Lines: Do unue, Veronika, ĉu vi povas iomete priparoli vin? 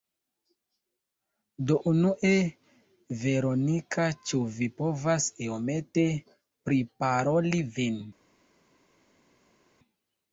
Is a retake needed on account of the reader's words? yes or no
no